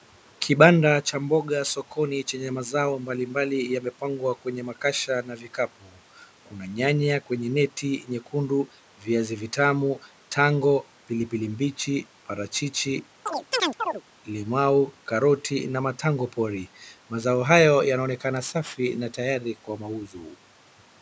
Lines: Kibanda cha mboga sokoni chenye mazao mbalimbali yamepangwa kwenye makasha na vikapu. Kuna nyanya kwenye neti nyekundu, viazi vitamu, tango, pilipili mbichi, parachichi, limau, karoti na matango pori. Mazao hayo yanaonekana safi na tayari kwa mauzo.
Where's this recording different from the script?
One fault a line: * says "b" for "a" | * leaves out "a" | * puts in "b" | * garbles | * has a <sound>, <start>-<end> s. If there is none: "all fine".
* has a chirp, 13.3-14.0 s